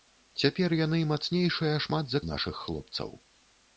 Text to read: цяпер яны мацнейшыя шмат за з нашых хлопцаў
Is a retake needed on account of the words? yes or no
no